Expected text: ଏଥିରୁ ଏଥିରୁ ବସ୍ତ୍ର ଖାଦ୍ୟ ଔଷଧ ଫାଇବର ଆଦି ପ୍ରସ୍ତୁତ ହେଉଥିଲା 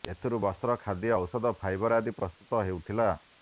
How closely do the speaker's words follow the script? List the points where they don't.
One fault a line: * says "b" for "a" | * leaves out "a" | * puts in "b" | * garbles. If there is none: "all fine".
* leaves out "ଏଥିରୁ"